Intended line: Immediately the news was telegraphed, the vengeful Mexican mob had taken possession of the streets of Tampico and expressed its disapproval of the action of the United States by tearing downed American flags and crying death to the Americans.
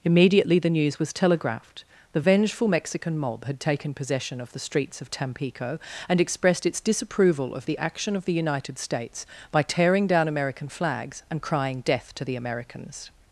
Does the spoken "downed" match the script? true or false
false